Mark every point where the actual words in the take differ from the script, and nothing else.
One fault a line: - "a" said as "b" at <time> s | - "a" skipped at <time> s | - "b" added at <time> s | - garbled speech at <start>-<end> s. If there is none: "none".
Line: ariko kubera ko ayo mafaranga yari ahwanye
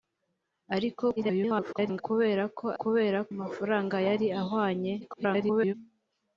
- garbled speech at 1.2-2.0 s
- "ayo" said as "kubera" at 2.8 s
- garbled speech at 5.0-5.7 s